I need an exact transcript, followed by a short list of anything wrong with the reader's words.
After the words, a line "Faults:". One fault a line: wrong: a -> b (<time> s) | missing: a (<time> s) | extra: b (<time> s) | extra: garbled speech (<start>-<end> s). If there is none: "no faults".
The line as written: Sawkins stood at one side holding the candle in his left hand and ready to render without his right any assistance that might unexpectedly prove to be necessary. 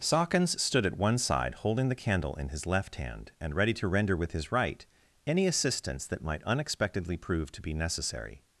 Sawkins stood at one side holding the candle in his left hand and ready to render with his right any assistance that might unexpectedly prove to be necessary.
Faults:
wrong: without -> with (4.2 s)